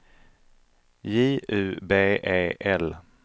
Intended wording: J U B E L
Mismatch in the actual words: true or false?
false